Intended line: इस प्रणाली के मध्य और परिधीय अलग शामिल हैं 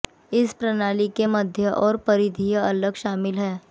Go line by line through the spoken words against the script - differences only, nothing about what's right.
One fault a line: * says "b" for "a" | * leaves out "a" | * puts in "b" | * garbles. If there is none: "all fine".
all fine